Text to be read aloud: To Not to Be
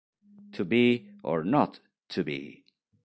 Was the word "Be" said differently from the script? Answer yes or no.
no